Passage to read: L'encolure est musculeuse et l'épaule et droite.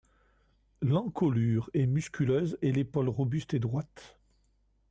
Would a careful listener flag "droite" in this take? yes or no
no